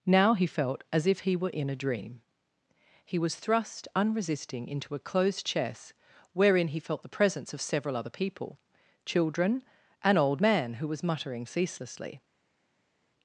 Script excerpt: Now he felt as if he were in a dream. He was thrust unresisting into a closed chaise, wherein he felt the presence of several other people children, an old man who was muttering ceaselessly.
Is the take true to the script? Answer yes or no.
no